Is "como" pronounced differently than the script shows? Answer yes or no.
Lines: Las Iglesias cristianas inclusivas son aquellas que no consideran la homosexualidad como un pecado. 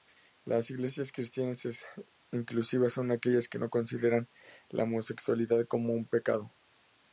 no